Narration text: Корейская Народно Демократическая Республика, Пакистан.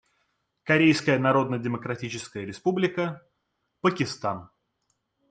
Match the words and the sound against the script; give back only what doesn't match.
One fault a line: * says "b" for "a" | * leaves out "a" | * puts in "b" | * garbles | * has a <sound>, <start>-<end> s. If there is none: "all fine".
all fine